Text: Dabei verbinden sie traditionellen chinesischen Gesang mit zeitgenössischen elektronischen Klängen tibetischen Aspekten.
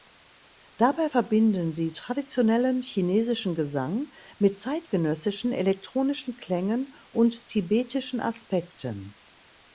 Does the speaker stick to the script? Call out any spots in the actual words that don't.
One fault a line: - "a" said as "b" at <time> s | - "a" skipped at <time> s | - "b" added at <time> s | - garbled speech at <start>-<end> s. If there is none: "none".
- "und" added at 7.1 s